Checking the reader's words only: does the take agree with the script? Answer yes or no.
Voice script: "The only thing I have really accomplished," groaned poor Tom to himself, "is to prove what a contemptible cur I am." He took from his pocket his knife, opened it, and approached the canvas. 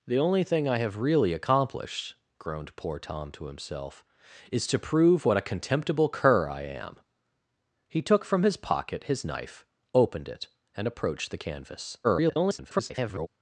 no